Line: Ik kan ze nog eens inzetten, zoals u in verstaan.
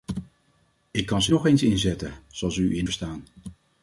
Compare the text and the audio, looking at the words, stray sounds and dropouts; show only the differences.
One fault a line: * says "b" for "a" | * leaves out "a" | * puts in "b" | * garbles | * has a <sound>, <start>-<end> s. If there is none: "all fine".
all fine